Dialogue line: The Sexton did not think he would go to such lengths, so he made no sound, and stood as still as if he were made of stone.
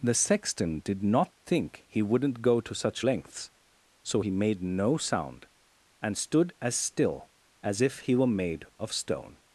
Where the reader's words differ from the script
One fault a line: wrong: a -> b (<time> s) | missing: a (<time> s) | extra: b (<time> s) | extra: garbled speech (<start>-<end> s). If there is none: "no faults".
wrong: would -> wouldn't (2.0 s)